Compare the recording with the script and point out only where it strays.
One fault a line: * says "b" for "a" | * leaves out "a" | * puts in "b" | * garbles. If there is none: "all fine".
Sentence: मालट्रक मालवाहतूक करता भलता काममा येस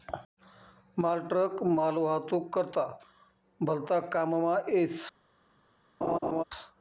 all fine